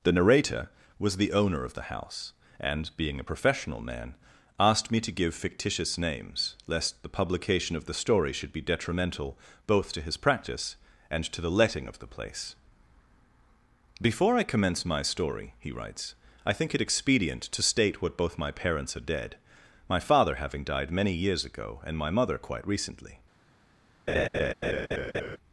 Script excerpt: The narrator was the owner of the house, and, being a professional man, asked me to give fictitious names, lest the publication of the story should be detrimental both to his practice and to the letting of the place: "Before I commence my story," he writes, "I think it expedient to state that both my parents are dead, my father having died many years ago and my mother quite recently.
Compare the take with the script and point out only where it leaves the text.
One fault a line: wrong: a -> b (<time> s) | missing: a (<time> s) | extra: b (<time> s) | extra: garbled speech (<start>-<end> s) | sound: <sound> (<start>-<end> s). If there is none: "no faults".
wrong: that -> what (18.0 s)
sound: laugh (24.1-25.4 s)